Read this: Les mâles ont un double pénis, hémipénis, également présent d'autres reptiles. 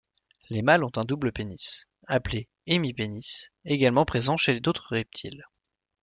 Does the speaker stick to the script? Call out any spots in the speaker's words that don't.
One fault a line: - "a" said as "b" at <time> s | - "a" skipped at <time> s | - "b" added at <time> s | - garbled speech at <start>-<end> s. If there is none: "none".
- "appelé" added at 2.1 s
- "chez" added at 4.4 s